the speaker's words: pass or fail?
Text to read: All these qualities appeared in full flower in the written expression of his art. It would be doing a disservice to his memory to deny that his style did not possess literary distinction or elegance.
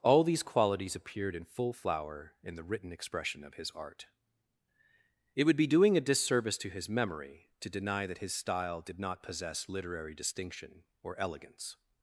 pass